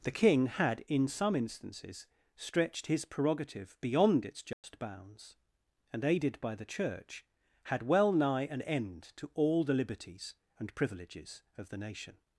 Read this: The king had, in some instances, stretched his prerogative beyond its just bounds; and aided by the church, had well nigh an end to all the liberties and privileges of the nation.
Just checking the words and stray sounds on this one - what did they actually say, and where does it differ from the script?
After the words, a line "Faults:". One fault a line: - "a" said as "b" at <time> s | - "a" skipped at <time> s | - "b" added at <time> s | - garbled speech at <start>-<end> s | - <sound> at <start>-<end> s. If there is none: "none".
The king had, in some instances, stretched his prerogative beyond its just bounds; and aided by the church, had well nigh an end to all the liberties and privileges of the nation.
Faults:
- dropout at 4.5-4.6 s